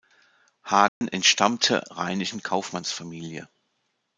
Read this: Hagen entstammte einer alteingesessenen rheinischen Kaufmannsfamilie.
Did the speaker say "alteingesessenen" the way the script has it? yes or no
no